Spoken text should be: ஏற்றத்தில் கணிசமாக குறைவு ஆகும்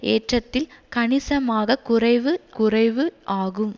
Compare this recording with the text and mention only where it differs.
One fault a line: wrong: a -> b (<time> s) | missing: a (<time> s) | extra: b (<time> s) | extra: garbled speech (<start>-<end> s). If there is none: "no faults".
extra: குறைவு (2.5 s)